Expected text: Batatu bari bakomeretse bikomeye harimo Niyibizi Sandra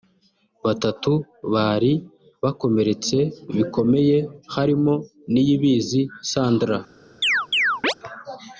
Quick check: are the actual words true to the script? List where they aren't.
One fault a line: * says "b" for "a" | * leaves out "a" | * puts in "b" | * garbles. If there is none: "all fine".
all fine